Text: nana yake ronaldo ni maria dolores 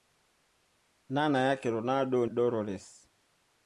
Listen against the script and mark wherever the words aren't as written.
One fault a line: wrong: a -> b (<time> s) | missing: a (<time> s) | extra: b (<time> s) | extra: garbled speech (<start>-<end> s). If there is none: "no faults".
missing: ni maria (2.2 s)